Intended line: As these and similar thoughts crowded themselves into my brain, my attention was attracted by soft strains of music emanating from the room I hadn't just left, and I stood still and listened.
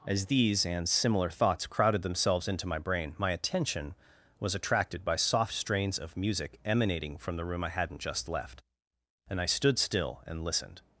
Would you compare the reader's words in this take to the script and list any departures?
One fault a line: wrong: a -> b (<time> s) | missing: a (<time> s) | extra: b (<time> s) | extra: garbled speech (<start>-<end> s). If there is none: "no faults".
no faults